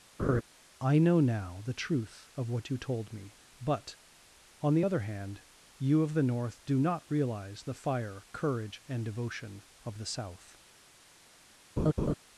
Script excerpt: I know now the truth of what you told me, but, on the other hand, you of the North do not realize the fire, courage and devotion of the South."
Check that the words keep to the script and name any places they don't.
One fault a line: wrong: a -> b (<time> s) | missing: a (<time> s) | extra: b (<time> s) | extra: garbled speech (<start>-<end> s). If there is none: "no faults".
no faults